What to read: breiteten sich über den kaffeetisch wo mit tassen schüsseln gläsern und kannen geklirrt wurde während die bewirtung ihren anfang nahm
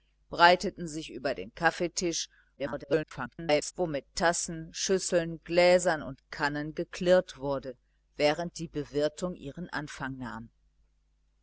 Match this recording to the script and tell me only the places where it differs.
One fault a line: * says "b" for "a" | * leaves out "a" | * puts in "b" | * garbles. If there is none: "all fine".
* garbles